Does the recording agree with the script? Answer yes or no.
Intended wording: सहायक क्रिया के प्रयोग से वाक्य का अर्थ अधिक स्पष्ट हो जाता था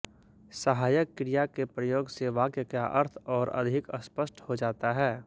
no